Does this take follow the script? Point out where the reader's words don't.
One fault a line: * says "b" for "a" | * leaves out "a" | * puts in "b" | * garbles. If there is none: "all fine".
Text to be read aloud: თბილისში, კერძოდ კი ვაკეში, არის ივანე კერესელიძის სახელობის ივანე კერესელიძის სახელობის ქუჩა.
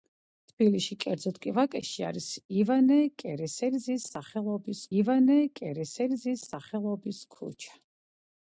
all fine